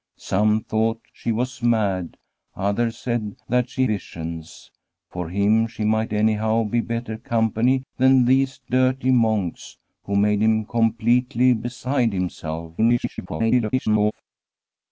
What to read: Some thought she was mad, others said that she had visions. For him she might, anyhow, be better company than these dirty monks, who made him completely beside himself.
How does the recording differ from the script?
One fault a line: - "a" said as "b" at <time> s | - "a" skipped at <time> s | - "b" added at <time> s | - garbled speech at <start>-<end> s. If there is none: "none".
- "had" skipped at 3.9 s
- garbled speech at 12.8-14.1 s